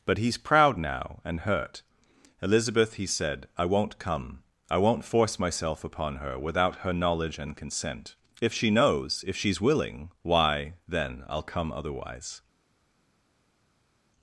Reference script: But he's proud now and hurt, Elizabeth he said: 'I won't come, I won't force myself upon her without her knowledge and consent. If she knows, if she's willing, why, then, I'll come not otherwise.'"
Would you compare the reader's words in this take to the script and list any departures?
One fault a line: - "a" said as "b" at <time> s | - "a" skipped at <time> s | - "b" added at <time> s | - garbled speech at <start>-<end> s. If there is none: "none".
- "not" skipped at 11.7 s